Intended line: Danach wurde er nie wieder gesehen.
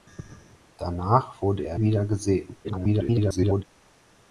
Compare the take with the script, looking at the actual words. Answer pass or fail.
fail